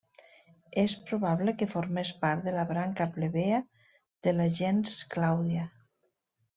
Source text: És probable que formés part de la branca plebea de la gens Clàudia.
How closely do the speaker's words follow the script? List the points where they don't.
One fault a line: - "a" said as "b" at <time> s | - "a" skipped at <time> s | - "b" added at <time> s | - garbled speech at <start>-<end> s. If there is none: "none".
none